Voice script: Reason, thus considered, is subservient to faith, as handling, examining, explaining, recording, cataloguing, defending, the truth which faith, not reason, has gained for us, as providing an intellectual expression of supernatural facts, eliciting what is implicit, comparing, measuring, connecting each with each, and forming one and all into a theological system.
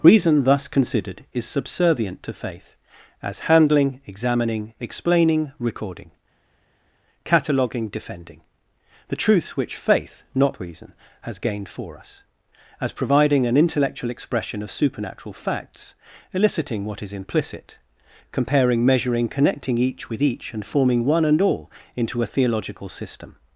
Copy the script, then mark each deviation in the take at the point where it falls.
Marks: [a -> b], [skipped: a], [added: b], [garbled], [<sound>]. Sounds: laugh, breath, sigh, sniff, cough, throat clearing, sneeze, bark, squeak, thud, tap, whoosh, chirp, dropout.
Reason, thus considered, is subservient to faith, as handling, examining, explaining, recording, cataloguing, defending, the truth which faith, not reason, has gained for us, as providing an intellectual expression of supernatural facts, eliciting what is implicit, comparing, measuring, connecting each with each, and forming one and all into a theological system.